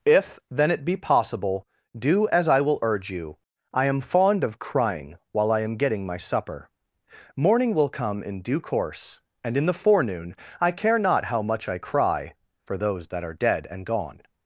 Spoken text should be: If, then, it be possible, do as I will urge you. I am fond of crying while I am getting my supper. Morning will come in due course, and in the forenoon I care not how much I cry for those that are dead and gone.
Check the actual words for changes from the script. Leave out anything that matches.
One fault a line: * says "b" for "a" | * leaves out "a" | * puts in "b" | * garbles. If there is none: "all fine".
all fine